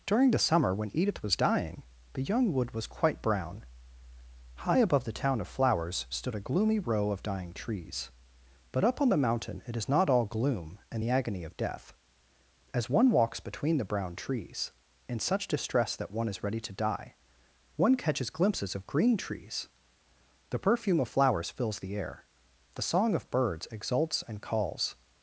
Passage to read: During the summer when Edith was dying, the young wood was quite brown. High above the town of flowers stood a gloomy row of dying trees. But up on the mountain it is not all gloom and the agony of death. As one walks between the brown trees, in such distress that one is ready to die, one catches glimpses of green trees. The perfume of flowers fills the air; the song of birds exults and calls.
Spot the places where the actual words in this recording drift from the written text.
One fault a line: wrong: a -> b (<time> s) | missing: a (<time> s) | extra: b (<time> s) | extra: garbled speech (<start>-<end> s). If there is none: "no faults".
no faults